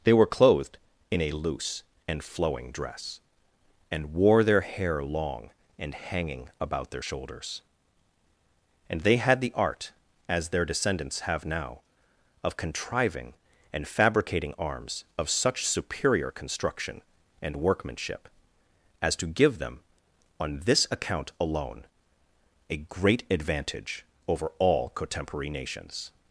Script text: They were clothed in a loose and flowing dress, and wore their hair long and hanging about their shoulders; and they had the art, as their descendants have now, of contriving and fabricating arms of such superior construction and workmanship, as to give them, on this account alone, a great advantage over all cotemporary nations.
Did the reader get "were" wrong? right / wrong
right